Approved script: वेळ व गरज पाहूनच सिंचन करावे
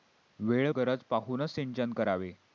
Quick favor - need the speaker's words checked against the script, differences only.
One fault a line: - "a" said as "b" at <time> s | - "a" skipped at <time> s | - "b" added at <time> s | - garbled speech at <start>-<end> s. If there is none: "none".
- "व" skipped at 0.7 s